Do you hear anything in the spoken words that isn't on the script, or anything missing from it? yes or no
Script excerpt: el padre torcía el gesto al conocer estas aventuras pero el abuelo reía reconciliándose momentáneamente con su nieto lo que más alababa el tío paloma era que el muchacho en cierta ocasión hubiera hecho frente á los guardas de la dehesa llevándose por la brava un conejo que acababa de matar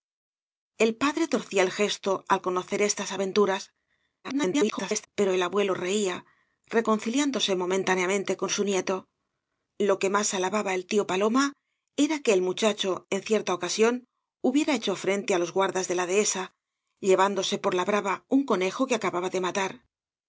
yes